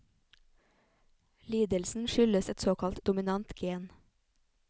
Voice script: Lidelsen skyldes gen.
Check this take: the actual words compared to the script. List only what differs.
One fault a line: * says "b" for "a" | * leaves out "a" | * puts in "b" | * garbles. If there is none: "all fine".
* puts in "et såkalt dominant"